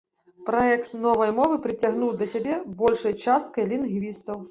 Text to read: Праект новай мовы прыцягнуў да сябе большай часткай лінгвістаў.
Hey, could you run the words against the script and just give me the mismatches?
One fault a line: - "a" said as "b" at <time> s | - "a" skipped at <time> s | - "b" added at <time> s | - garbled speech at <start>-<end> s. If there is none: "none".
none